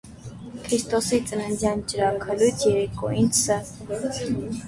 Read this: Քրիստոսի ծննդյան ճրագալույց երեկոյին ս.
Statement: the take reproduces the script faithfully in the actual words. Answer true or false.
true